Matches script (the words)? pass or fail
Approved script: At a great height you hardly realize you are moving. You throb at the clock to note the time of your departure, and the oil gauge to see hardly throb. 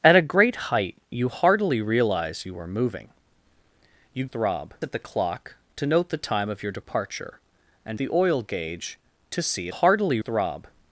pass